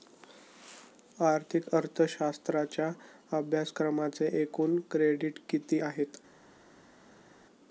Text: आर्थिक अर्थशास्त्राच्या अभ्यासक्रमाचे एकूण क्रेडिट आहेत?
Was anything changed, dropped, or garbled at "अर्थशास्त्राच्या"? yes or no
no